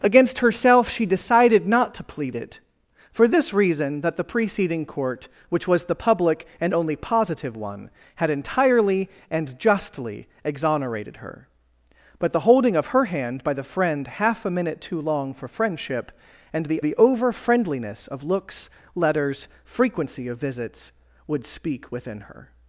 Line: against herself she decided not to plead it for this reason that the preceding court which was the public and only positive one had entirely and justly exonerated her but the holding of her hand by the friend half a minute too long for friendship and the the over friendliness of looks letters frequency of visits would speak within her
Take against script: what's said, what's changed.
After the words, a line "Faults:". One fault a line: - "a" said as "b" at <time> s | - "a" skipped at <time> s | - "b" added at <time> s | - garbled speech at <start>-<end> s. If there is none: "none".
against herself she decided not to plead it for this reason that the preceding court which was the public and only positive one had entirely and justly exonerated her but the holding of her hand by the friend half a minute too long for friendship and the the over friendliness of looks letters frequency of visits would speak within her
Faults:
none